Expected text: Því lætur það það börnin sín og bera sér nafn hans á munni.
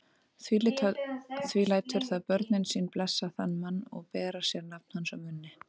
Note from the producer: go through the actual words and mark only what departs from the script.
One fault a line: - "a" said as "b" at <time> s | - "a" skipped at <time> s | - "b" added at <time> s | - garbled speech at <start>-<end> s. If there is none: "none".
- "það" skipped at 2.2 s
- "blessa þann mann" added at 3.0 s